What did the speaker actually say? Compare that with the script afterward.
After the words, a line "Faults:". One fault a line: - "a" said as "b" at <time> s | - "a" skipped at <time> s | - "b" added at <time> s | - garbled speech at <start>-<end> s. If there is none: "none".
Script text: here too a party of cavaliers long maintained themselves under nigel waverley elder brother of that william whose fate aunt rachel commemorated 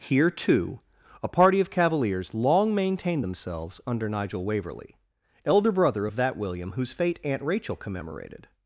here too a party of cavaliers long maintained themselves under nigel waverley elder brother of that william whose fate aunt rachel commemorated
Faults:
none